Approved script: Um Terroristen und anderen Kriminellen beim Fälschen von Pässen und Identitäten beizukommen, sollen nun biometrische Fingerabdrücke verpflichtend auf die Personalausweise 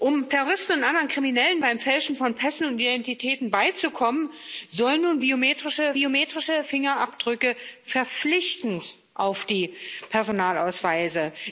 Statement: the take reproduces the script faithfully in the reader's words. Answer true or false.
false